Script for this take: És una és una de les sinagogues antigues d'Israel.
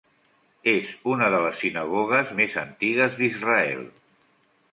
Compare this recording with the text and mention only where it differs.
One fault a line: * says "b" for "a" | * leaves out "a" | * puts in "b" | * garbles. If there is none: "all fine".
* leaves out "és una"
* puts in "més"